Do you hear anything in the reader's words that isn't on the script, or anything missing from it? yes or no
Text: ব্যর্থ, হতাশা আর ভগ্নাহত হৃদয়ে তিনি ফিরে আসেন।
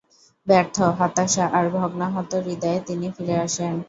no